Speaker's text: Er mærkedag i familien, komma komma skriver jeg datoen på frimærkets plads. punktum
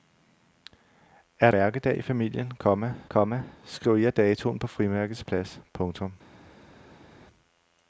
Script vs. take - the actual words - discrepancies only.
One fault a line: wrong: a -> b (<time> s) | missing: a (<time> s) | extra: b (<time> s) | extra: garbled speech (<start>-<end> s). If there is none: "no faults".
no faults